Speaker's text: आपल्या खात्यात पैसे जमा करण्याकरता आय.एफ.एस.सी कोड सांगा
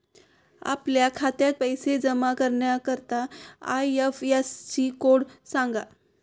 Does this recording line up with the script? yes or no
yes